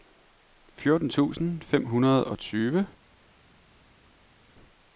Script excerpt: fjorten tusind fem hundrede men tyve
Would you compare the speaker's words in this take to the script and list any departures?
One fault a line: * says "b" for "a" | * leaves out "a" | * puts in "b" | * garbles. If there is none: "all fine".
* says "og" for "men"